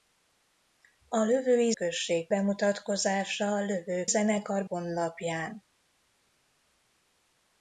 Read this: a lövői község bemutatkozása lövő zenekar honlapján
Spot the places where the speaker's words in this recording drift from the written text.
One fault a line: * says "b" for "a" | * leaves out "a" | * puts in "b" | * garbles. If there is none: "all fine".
all fine